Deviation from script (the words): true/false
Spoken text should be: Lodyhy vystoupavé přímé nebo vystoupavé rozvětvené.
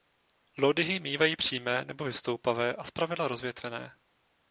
true